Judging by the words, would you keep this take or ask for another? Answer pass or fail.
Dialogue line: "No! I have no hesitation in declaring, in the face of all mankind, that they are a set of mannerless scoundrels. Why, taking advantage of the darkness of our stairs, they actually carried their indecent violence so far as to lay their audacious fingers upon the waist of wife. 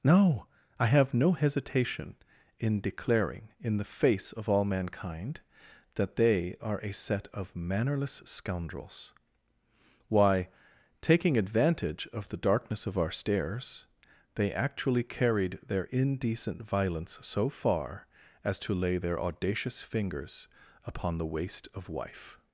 pass